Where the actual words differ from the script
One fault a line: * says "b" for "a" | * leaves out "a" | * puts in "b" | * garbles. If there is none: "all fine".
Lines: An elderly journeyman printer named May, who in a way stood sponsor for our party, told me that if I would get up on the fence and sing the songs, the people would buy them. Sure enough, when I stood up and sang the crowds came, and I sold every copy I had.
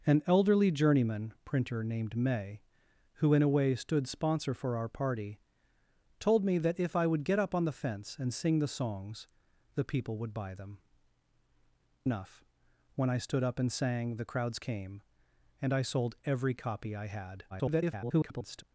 * leaves out "Sure"
* garbles